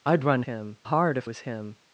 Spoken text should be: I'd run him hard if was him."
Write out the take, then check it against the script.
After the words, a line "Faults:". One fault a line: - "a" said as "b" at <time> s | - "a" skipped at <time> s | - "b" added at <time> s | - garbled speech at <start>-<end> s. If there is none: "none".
I'd run him hard if was him."
Faults:
none